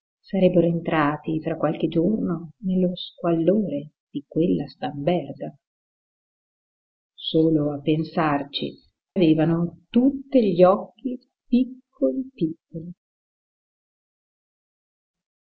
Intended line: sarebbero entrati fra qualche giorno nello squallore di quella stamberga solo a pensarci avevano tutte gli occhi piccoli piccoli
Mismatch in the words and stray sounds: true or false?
false